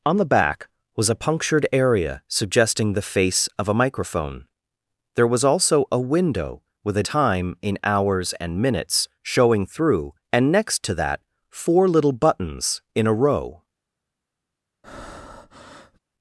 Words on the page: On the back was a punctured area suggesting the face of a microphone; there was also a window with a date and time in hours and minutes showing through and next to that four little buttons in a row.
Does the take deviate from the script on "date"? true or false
true